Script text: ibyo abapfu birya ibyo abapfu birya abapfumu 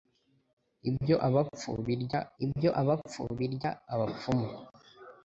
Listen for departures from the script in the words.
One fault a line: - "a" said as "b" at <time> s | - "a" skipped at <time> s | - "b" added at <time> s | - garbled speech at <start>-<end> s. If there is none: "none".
none